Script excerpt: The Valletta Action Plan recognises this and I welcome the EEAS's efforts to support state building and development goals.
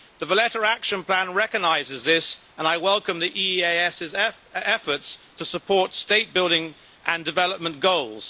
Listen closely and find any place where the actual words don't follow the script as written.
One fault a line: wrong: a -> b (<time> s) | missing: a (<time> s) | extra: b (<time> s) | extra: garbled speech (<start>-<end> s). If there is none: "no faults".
no faults